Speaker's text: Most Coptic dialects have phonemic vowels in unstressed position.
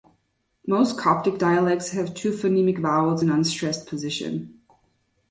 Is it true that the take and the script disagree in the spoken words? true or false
true